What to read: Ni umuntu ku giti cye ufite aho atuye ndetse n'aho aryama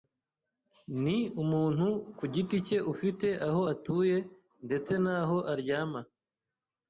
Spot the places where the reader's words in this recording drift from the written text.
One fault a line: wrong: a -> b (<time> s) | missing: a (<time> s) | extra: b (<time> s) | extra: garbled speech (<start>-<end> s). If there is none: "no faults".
no faults